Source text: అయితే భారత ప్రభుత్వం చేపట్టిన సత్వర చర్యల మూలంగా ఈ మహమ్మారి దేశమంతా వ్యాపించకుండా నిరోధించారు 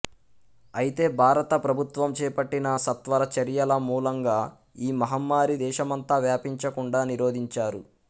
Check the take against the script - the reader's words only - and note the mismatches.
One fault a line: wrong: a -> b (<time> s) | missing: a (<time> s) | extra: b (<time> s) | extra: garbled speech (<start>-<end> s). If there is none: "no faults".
no faults